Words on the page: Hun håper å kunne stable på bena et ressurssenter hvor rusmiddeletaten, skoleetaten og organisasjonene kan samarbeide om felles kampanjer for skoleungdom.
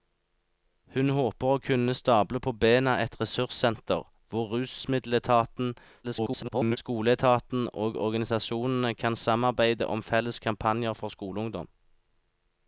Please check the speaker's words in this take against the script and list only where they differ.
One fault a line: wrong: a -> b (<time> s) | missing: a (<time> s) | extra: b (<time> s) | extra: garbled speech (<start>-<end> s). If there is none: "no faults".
extra: garbled speech (6.0-6.8 s)